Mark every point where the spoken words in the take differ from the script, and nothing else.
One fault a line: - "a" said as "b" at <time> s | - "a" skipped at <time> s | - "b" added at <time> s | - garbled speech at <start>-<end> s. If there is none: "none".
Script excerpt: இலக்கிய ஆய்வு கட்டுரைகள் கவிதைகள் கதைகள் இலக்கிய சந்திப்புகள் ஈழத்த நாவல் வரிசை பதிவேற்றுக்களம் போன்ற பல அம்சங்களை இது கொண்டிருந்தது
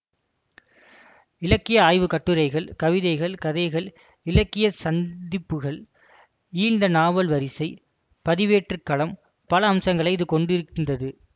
- "போன்ற" skipped at 9.2 s